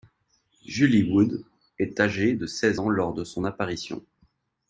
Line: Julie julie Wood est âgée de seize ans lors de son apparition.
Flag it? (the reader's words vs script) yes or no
yes